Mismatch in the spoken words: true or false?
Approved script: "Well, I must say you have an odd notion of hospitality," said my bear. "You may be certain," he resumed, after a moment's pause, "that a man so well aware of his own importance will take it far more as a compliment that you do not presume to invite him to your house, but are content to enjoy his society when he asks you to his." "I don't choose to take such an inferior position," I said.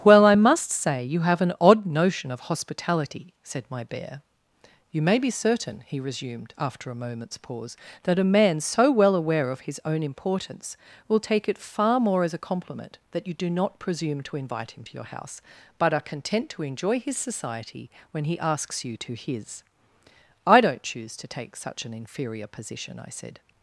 false